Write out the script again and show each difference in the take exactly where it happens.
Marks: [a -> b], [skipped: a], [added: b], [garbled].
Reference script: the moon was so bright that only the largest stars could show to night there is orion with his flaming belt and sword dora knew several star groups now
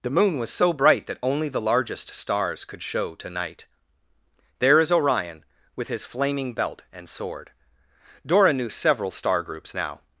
the moon was so bright that only the largest stars could show to night there is orion with his flaming belt and sword dora knew several star groups now